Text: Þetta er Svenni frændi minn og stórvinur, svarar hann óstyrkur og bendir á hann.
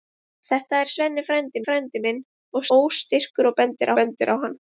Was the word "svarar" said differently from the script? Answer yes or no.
yes